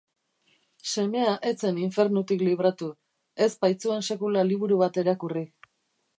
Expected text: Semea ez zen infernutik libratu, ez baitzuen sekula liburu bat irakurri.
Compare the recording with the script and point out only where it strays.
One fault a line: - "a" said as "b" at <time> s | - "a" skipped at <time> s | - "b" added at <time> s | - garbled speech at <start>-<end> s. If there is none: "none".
none